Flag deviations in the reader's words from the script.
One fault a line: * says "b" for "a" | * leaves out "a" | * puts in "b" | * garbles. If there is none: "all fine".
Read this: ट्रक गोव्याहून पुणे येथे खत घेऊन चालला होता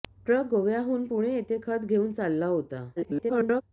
* garbles